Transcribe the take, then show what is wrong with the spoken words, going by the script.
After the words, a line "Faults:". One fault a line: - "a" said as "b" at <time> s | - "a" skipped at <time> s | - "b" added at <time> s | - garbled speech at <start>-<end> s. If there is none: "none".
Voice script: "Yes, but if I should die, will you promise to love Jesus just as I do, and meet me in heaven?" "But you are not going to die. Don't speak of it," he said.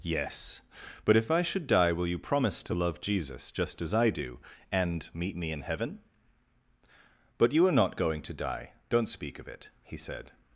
"Yes, but if I should die, will you promise to love Jesus just as I do, and meet me in heaven?" "But you are not going to die. Don't speak of it," he said.
Faults:
none